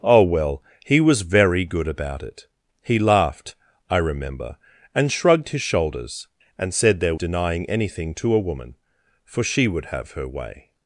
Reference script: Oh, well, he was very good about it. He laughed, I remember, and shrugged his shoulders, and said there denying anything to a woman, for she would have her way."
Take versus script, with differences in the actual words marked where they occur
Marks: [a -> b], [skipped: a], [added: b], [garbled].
Oh, well, he was very good about it. He laughed, I remember, and shrugged his shoulders, and said there denying anything to a woman, for she would have her way."